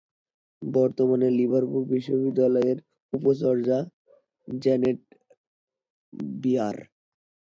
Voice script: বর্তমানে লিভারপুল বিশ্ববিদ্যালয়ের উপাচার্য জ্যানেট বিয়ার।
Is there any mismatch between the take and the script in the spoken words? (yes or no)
no